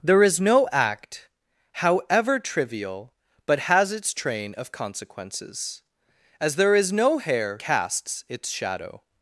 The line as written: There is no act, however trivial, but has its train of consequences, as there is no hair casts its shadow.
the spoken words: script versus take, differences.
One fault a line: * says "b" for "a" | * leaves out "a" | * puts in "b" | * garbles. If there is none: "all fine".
all fine